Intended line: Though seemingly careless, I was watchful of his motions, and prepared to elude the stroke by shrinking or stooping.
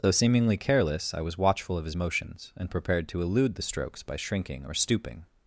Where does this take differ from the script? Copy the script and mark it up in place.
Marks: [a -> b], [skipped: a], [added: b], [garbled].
Though seemingly careless, I was watchful of his motions, and prepared to elude the [stroke -> strokes] by shrinking or stooping.